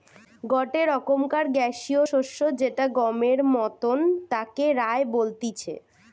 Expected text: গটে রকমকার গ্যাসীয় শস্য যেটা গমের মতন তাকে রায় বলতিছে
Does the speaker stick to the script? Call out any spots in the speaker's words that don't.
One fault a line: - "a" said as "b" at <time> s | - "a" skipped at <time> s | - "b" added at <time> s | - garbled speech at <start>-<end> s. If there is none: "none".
none